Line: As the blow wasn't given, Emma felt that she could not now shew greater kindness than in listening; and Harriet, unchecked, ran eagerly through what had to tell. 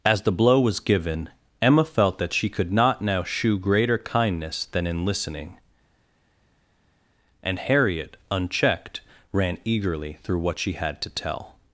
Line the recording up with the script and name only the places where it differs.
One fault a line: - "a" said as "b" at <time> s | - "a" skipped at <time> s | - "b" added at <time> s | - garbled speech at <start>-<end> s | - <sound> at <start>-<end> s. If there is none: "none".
- "wasn't" said as "was" at 0.6 s
- "she" added at 10.6 s